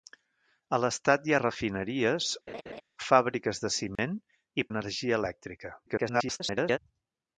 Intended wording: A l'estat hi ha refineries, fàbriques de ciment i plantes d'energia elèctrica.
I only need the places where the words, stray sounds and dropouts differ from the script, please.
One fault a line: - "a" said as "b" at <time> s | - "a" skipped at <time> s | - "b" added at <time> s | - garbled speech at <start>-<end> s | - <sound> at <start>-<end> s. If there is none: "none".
- laugh at 2.5-2.8 s
- dropout at 4.0-4.0 s
- "plantes" skipped at 4.7 s
- garbled speech at 5.9-6.8 s